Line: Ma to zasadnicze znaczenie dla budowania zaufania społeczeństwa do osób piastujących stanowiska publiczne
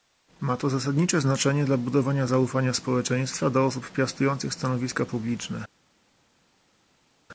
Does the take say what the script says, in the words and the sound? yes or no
yes